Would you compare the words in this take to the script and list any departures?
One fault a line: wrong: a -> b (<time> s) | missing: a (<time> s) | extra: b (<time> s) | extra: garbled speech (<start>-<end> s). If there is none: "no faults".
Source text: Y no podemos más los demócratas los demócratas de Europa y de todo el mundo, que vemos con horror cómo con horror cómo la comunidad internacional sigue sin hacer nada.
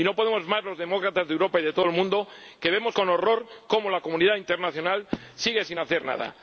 missing: los demócratas (1.3 s)
missing: con horror cómo (3.9 s)